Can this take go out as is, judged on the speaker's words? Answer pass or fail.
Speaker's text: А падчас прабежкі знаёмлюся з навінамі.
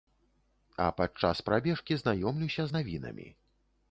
pass